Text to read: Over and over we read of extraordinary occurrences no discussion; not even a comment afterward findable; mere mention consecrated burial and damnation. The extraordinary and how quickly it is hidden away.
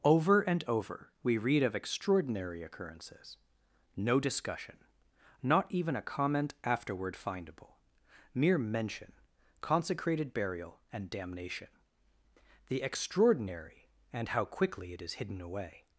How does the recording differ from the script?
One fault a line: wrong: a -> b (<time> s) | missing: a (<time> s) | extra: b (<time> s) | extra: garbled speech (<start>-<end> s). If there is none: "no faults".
no faults